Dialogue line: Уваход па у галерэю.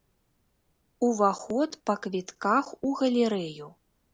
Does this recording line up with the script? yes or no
no